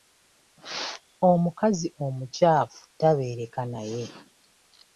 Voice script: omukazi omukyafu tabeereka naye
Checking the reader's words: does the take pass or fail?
pass